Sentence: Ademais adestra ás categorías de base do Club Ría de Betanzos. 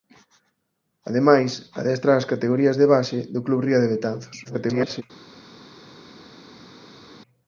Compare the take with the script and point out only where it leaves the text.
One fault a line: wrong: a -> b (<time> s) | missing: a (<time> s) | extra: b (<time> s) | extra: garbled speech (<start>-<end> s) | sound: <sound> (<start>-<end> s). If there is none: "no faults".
extra: garbled speech (4.4-5.0 s)